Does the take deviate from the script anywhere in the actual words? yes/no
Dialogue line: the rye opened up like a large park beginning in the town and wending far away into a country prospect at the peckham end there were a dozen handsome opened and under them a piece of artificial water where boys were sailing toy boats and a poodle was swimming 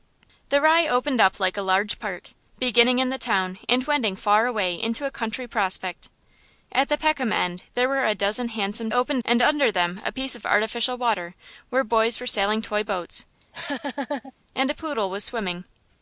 no